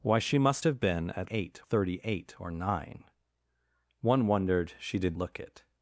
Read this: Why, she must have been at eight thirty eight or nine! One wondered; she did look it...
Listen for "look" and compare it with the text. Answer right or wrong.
right